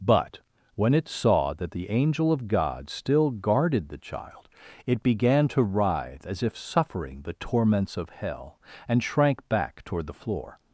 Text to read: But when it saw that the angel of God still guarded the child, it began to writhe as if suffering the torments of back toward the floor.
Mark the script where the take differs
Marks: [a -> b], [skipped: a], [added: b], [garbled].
But when it saw that the angel of God still guarded the child, it began to writhe as if suffering the torments of [added: hell and shrank] back toward the floor.